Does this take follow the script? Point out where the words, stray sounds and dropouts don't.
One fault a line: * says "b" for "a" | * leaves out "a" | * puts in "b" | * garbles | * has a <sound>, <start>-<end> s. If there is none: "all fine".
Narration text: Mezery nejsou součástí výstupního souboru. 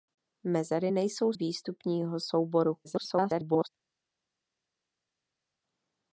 * leaves out "součástí"
* garbles